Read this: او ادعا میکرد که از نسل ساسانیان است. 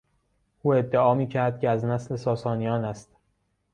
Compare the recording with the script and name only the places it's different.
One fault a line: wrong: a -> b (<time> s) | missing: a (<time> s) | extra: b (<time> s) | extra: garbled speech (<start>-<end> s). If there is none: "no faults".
no faults